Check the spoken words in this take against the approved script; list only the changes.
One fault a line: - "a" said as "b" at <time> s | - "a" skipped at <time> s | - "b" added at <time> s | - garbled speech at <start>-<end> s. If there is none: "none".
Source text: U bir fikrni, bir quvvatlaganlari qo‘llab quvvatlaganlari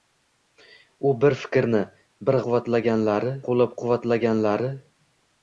none